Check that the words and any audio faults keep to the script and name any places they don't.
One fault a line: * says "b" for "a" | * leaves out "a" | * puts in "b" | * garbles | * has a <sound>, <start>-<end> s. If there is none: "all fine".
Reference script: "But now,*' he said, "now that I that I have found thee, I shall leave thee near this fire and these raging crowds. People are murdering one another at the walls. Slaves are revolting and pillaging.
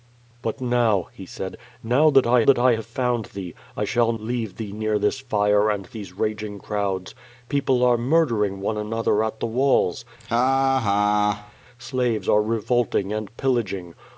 * has a laugh, 10.2-11.5 s